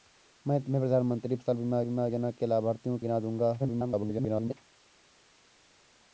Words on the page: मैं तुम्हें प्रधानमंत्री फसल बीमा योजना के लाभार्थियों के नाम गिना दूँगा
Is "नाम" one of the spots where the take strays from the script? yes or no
yes